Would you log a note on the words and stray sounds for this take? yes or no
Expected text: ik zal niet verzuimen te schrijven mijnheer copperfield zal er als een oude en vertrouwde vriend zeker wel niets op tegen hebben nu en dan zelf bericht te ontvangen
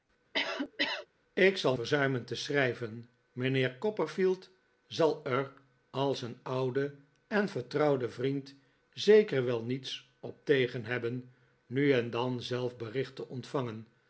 yes